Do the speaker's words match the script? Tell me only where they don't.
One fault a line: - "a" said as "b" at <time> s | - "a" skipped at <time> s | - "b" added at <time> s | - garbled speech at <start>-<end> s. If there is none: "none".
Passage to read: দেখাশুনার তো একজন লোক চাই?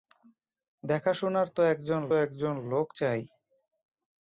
- "একজন" added at 2.1 s